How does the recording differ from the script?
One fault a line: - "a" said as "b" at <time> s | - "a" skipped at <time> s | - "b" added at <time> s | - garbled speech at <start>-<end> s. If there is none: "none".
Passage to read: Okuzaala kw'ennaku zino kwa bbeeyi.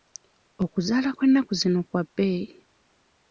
none